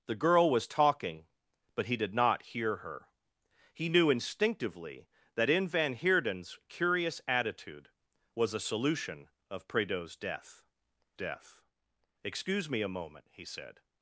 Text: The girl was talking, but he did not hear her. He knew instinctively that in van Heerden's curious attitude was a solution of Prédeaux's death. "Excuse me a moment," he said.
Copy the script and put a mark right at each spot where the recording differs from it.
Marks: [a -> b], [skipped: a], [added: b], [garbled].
The girl was talking, but he did not hear her. He knew instinctively that in van Heerden's curious attitude was a solution of Prédeaux's death. [added: death] "Excuse me a moment," he said.